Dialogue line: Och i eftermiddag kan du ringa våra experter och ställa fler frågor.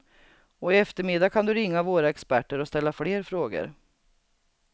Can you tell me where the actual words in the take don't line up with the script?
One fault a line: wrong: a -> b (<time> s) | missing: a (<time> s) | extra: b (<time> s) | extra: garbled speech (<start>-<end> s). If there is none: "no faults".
no faults